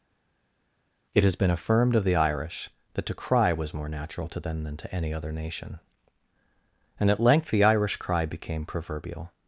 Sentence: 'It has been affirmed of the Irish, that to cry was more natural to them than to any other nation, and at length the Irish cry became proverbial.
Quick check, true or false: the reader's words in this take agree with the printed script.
true